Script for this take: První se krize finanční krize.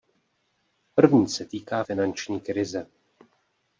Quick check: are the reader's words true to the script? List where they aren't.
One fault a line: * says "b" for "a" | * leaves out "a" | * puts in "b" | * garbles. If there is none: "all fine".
* says "týká" for "krize"